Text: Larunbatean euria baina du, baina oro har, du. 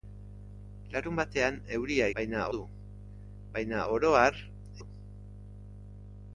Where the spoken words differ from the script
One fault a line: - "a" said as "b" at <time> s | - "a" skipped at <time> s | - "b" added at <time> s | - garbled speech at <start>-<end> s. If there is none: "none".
none